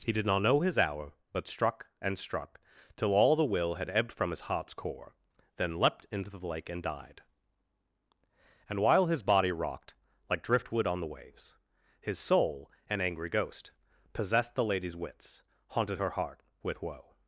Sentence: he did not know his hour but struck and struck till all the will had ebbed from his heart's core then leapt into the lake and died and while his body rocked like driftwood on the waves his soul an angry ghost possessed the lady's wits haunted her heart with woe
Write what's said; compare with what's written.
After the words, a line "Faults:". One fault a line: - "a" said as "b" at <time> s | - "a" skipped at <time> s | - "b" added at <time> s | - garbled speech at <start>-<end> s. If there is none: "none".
he did not know his hour but struck and struck till all the will had ebbed from his heart's core then leapt into the lake and died and while his body rocked like driftwood on the waves his soul an angry ghost possessed the lady's wits haunted her heart with woe
Faults:
none